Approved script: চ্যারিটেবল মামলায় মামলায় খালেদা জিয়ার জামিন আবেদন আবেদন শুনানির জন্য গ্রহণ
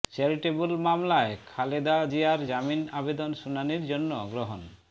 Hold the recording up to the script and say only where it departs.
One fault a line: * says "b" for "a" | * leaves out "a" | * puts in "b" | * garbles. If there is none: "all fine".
* leaves out "মামলায়"
* leaves out "আবেদন"